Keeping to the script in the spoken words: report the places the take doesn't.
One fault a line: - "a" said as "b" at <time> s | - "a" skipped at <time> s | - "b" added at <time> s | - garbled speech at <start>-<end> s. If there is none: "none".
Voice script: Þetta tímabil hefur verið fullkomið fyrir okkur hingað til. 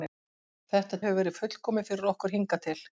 - "tímabil" skipped at 1.0 s